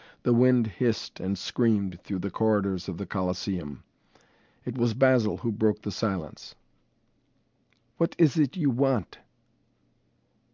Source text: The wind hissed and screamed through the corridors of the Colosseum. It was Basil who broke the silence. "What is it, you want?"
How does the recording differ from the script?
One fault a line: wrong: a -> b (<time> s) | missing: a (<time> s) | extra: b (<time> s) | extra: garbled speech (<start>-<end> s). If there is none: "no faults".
no faults